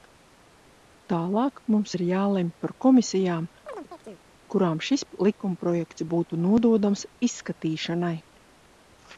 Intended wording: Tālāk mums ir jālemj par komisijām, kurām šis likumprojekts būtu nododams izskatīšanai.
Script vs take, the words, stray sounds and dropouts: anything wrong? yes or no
yes